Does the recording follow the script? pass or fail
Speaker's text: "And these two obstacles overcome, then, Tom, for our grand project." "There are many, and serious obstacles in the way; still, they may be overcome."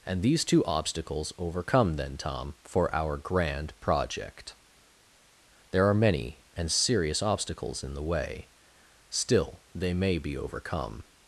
pass